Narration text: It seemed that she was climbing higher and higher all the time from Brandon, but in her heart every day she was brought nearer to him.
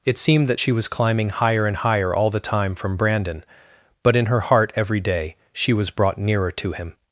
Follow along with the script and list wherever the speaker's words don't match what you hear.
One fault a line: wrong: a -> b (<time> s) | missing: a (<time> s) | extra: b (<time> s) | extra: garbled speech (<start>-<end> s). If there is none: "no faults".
no faults